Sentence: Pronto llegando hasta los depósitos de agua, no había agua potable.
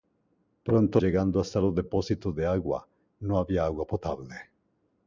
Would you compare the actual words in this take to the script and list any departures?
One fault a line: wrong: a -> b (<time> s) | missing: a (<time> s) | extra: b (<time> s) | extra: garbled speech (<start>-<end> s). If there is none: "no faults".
no faults